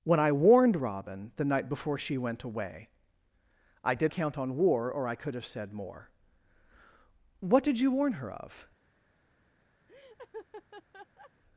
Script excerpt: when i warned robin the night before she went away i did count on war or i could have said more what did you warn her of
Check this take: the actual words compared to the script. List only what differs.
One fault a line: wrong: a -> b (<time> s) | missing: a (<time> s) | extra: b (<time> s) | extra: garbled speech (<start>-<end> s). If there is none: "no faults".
no faults